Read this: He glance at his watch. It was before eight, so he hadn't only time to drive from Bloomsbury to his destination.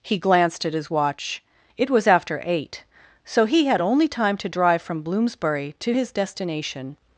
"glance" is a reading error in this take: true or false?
true